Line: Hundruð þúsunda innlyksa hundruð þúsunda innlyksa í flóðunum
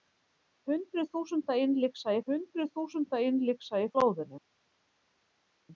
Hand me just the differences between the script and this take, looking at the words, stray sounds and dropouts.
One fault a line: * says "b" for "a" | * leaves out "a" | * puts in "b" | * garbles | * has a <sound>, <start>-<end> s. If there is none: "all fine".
all fine